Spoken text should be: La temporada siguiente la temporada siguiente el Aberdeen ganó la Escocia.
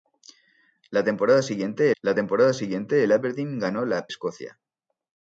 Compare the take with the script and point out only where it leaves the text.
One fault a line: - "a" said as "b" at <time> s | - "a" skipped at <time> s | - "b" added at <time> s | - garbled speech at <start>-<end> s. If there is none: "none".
none